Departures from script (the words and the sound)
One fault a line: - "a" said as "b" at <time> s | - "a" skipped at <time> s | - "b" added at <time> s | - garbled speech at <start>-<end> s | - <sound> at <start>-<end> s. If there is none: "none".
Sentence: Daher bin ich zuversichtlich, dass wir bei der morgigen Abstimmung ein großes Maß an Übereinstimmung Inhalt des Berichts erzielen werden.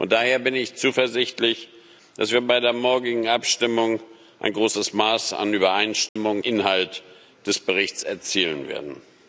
- dropout at 6.1-6.2 s